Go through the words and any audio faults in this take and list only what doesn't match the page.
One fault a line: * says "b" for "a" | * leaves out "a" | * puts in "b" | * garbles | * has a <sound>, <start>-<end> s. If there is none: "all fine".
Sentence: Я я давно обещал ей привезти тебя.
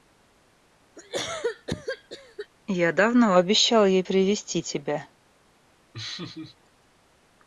* has a cough, 1.0-2.5 s
* leaves out "я"
* has a laugh, 5.9-6.6 s